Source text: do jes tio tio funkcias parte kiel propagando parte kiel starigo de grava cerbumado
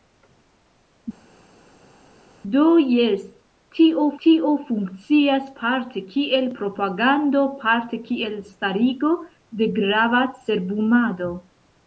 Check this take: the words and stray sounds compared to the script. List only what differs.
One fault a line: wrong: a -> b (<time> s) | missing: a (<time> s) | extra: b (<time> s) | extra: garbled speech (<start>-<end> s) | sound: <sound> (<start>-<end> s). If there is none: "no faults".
no faults